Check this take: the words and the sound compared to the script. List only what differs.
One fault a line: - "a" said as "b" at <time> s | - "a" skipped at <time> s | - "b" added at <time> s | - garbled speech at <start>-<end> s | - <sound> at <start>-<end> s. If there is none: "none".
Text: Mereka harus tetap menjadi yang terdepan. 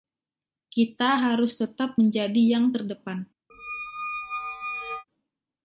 - "Mereka" said as "Kita" at 0.7 s
- squeak at 3.5-5.0 s